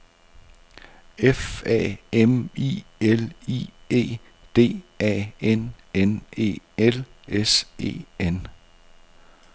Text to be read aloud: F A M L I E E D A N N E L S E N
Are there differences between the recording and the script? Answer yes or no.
yes